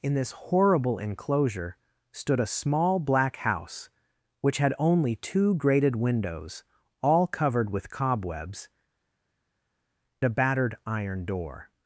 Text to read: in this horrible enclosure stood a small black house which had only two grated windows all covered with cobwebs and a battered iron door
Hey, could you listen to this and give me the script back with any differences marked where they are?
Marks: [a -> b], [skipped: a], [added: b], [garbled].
in this horrible enclosure stood a small black house which had only two grated windows all covered with cobwebs [skipped: and] a battered iron door